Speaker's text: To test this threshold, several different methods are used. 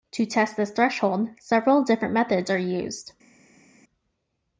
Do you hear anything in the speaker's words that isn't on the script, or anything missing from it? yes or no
no